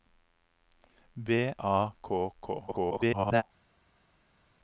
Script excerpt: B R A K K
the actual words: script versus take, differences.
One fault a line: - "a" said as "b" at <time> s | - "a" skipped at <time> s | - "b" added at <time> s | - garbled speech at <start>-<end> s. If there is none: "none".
- "R" skipped at 1.5 s
- garbled speech at 2.7-3.4 s